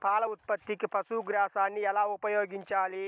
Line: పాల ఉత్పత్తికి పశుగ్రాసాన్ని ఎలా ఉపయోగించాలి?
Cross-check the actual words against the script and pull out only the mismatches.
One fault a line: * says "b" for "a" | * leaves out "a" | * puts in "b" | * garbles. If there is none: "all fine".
all fine